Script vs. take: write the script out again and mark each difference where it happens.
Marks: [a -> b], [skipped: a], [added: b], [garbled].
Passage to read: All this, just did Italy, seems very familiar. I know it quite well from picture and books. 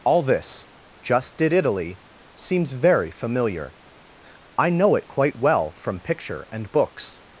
All this, just did Italy, seems very familiar. I know it quite well from picture and books.